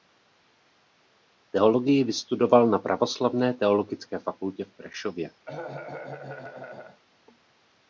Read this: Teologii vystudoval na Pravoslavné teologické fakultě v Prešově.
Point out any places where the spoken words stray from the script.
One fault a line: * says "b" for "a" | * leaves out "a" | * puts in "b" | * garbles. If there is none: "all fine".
all fine